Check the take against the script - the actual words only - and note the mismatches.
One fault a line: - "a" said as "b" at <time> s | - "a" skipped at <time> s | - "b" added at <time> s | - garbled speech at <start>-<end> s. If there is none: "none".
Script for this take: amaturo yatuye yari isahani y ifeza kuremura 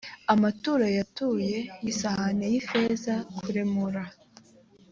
- "yari" skipped at 1.6 s